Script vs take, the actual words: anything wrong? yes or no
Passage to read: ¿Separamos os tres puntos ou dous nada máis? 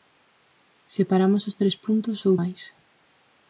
yes